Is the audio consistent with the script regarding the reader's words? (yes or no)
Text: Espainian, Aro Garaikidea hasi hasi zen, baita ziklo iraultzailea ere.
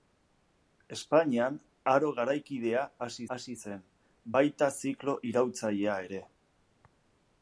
yes